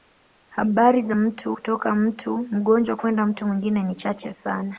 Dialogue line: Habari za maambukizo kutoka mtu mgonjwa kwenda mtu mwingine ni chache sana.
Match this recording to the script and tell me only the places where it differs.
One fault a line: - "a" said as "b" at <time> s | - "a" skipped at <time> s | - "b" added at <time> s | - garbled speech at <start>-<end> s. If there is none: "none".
- "maambukizo" said as "mtu" at 1.1 s